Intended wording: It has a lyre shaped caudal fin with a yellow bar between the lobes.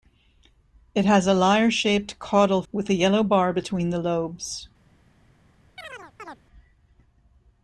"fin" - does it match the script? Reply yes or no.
no